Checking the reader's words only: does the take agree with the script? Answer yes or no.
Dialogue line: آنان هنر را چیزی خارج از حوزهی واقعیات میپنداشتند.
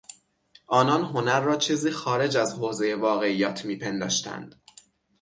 yes